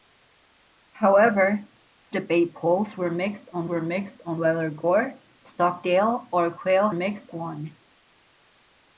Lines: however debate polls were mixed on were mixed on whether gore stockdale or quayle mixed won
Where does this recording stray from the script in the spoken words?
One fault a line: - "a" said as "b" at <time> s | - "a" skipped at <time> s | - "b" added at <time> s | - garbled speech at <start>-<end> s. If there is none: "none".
none